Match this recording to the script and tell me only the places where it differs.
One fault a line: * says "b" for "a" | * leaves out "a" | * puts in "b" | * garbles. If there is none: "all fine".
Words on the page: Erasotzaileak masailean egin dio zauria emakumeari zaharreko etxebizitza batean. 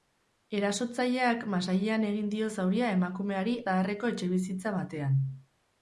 all fine